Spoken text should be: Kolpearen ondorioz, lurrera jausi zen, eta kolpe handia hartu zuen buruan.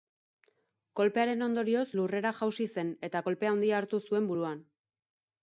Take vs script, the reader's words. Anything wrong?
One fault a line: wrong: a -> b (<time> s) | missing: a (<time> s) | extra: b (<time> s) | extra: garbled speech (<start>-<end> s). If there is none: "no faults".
no faults